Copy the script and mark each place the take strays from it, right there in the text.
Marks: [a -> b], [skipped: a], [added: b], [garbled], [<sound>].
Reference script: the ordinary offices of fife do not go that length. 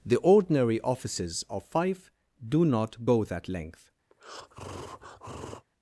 the ordinary offices of fife do not go that length. [breath]